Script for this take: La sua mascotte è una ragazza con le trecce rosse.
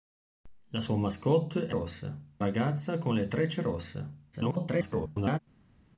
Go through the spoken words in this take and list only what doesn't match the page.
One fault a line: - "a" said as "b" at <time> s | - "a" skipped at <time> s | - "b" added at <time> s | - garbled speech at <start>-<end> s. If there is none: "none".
- "una" said as "rosse" at 1.7 s
- garbled speech at 4.3-5.4 s